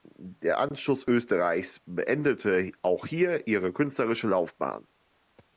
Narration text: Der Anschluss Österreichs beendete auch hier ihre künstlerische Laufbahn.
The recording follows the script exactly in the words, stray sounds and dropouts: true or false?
true